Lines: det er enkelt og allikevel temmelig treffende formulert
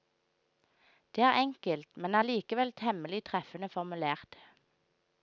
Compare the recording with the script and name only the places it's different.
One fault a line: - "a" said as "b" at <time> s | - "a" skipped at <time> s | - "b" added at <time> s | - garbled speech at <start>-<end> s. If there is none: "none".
- "og" said as "men" at 2.0 s